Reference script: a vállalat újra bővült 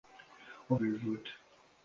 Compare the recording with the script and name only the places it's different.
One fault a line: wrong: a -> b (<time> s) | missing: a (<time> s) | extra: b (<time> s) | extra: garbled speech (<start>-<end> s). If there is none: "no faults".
missing: vállalat újra (0.8 s)